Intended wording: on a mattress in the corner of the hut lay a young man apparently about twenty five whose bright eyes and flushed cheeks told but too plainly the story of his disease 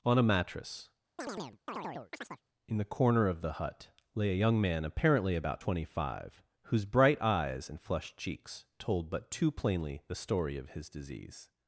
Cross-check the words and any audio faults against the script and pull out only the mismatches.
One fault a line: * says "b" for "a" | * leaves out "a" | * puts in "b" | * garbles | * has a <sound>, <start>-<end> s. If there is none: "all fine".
* has a chirp, 1.2-2.4 s